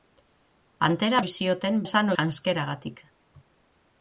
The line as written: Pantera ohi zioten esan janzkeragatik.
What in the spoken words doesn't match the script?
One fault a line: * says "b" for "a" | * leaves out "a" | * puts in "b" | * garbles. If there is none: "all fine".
all fine